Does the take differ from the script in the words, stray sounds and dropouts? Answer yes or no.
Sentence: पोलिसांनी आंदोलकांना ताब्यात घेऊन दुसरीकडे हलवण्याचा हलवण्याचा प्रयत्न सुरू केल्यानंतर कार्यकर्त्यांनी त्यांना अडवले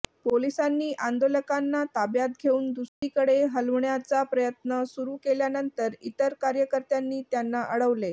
yes